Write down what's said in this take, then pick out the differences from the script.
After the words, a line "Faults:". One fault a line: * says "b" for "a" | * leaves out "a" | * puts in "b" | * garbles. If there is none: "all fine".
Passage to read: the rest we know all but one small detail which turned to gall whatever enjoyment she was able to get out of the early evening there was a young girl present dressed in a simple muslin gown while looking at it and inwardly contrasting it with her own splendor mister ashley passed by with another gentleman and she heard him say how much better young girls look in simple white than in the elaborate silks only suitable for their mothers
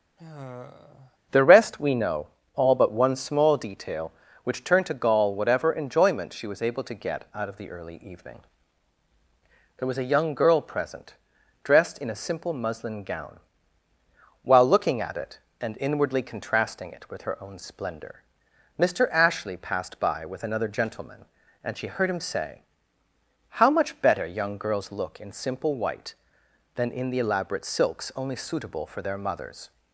the rest we know all but one small detail which turned to gall whatever enjoyment she was able to get out of the early evening there was a young girl present dressed in a simple muslin gown while looking at it and inwardly contrasting it with her own splendor mister ashley passed by with another gentleman and she heard him say how much better young girls look in simple white than in the elaborate silks only suitable for their mothers
Faults:
all fine